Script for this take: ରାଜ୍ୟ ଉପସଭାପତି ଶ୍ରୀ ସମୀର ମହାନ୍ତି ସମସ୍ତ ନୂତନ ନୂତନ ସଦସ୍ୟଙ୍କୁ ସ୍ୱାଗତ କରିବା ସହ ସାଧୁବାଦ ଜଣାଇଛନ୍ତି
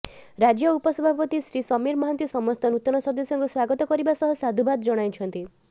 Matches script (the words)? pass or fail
fail